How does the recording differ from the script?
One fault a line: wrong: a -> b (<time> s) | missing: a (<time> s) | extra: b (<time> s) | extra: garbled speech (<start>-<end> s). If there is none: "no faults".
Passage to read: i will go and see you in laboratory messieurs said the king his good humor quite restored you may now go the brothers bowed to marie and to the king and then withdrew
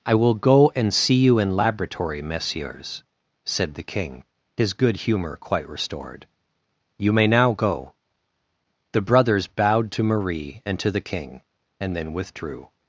no faults